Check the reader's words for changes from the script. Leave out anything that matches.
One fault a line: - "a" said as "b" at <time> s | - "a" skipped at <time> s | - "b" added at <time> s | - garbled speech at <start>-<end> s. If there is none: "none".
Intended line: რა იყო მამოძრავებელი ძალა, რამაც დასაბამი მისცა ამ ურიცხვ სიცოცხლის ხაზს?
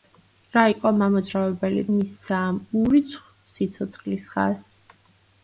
- "ძალა რამაც დასაბამი" skipped at 1.8 s